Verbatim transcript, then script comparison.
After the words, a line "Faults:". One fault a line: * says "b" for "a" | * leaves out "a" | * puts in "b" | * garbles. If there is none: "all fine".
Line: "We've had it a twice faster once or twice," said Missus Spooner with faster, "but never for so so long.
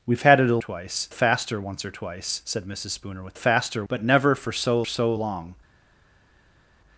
"We've had it a twice faster once or twice," said Missus Spooner with faster, "but never for so so long.
Faults:
all fine